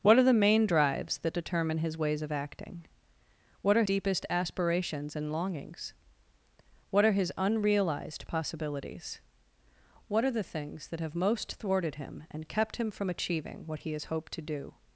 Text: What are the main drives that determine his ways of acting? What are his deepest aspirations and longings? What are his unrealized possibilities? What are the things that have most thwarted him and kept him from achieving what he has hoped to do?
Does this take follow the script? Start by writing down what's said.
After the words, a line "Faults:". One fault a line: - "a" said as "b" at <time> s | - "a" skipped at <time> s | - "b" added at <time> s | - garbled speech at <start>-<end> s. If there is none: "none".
What are the main drives that determine his ways of acting? What are deepest aspirations and longings? What are his unrealized possibilities? What are the things that have most thwarted him and kept him from achieving what he has hoped to do?
Faults:
- "his" skipped at 3.8 s